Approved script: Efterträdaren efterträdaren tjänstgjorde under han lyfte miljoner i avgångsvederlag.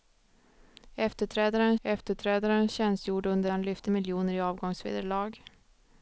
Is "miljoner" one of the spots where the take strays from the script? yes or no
no